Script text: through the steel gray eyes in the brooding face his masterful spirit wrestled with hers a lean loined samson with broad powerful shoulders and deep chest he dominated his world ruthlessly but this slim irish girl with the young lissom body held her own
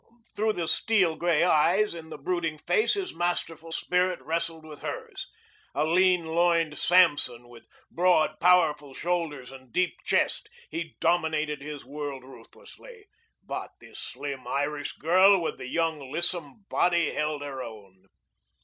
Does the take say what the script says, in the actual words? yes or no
yes